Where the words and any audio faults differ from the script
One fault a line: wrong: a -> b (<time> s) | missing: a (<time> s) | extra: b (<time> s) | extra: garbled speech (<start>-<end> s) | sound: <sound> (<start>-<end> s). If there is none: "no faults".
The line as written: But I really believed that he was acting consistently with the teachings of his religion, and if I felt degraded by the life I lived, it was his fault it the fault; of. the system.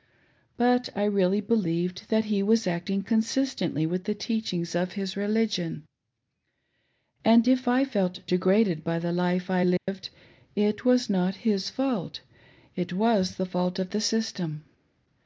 sound: dropout (9.8-9.9 s)
extra: not (11.1 s)
extra: was (12.9 s)